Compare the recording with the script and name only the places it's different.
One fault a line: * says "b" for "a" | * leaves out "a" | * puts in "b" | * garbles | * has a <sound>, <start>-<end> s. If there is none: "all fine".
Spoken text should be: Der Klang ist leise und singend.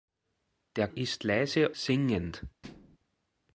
* leaves out "Klang"
* leaves out "und"
* has a thud, 2.6-3.0 s